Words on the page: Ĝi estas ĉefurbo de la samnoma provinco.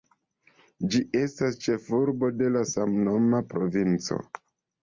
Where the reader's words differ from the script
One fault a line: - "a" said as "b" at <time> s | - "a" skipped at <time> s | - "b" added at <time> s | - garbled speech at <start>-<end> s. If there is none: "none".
none